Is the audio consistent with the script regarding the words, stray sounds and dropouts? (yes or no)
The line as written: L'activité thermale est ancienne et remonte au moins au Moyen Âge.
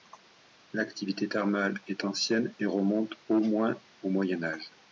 yes